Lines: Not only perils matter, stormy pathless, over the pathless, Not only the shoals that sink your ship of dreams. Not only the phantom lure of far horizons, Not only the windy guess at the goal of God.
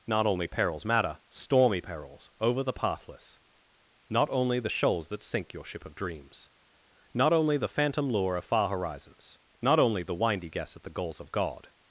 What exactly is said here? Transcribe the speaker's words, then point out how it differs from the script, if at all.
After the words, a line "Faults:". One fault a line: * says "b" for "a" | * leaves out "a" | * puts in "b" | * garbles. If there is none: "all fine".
Not only perils matter, stormy perils, over the pathless, Not only the shoals that sink your ship of dreams. Not only the phantom lure of far horizons, Not only the windy guess at the goals of God.
Faults:
* says "perils" for "pathless"
* says "goals" for "goal"